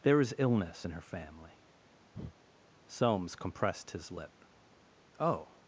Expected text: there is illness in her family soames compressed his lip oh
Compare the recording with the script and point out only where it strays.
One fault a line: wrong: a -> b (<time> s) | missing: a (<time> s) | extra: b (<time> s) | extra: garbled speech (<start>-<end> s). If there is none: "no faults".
no faults